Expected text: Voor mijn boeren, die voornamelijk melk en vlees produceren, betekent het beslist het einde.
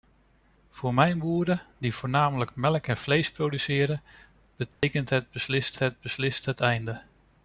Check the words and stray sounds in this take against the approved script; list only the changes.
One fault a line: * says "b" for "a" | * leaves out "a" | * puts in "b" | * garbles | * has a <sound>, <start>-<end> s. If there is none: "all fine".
* has a dropout, 4.7-4.8 s
* puts in "beslist het"